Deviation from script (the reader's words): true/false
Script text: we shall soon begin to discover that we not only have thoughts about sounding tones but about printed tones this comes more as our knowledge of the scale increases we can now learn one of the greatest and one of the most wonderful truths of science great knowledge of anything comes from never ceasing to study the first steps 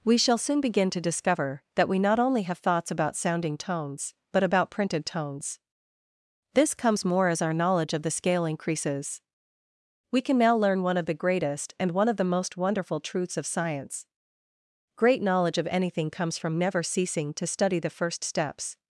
false